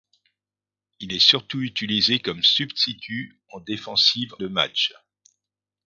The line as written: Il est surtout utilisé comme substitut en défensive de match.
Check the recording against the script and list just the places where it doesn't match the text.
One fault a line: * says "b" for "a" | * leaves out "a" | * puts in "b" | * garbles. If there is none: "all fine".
all fine